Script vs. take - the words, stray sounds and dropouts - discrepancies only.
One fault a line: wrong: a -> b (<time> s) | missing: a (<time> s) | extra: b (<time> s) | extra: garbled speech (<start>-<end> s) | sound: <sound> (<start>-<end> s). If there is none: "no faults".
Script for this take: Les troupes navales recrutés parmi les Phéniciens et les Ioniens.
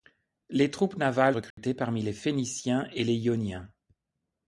sound: dropout (1.5-1.6 s)